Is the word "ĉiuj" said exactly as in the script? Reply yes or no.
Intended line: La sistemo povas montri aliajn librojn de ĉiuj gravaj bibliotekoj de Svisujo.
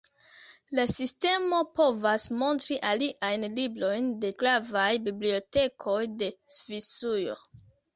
no